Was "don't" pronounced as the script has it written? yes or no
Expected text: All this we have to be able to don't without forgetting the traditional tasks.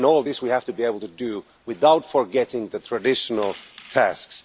no